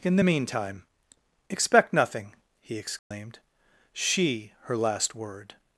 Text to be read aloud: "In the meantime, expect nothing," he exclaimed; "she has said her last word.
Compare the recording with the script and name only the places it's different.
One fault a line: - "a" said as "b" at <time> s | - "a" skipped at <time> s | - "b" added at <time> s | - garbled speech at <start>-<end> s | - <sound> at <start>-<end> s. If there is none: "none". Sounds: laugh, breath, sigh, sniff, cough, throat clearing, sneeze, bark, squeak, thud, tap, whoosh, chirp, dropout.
- dropout at 3.0-3.1 s
- "has said" skipped at 4.5 s